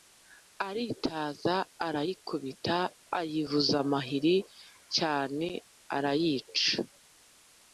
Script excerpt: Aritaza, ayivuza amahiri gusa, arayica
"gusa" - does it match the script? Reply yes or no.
no